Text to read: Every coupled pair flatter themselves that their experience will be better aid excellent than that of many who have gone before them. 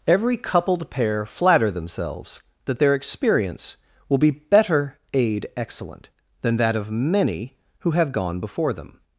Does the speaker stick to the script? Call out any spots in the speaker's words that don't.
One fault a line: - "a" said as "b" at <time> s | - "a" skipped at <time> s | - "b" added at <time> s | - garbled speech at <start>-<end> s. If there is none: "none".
none